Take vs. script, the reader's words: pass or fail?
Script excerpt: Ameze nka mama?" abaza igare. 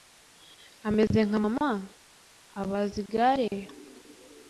pass